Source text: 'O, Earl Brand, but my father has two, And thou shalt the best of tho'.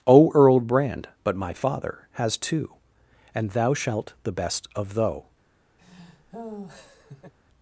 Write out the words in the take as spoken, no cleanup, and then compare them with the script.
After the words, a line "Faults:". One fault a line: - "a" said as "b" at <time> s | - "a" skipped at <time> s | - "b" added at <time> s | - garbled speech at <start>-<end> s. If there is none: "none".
'O, Earl Brand, but my father has two, And thou shalt the best of tho'.
Faults:
none